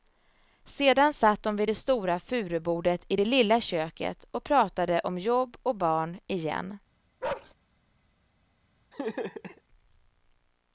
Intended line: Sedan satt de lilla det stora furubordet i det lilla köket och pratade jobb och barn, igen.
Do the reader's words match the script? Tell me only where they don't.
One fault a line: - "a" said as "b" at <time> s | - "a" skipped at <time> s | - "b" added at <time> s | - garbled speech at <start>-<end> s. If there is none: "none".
- "lilla" said as "vid" at 1.6 s
- "om" added at 5.0 s